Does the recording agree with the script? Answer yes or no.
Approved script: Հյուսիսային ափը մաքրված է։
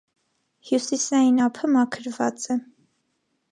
yes